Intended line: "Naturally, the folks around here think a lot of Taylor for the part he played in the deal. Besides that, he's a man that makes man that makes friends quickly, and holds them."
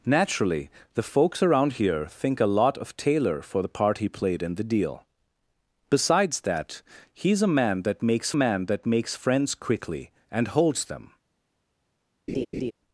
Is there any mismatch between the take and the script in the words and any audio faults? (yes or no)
yes